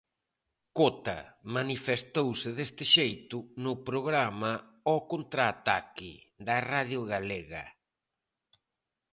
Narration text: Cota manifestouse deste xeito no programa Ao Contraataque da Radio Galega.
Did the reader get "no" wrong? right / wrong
right